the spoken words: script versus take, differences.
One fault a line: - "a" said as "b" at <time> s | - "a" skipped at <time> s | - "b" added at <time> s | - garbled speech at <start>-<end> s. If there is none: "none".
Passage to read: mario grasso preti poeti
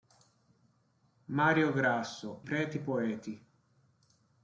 none